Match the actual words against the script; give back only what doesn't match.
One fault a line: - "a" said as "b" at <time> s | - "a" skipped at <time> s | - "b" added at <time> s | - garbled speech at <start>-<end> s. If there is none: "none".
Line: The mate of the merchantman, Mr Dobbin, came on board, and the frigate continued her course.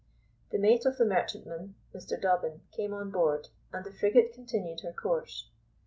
none